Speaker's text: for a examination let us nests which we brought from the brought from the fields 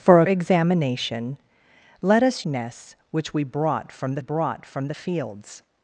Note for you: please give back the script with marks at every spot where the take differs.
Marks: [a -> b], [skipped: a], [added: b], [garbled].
for a examination let us nests which we brought from the brought from the fields